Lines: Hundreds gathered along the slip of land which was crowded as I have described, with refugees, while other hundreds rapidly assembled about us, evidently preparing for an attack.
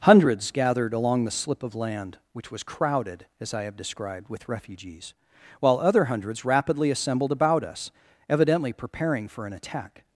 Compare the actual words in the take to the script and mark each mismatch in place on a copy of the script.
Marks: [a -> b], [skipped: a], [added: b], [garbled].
Hundreds gathered along the slip of land which was crowded as I have described, with refugees, while other hundreds rapidly assembled about us, evidently preparing for an attack.